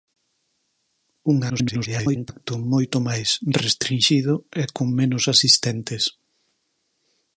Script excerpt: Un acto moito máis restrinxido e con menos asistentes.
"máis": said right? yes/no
yes